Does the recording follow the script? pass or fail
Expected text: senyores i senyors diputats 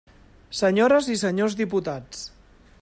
pass